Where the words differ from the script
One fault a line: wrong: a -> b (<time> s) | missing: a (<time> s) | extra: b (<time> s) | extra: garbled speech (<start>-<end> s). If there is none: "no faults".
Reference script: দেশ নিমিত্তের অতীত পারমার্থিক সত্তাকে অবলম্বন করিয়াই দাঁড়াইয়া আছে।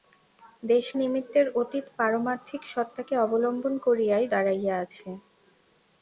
no faults